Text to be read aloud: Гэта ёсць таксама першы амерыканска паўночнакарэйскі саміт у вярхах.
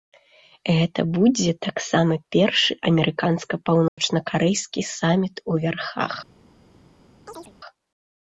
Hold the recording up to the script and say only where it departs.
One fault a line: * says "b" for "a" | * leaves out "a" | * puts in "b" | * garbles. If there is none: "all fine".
* says "будзе" for "ёсць"